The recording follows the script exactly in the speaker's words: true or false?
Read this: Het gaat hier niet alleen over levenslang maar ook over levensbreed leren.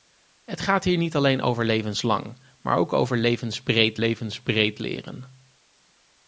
false